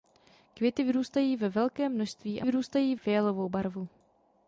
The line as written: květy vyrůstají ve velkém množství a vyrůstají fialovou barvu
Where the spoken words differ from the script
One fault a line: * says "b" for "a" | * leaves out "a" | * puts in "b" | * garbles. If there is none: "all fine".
all fine